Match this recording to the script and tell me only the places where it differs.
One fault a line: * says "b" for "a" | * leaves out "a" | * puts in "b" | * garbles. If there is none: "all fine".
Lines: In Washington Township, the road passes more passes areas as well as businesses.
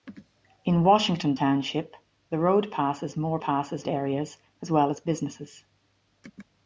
all fine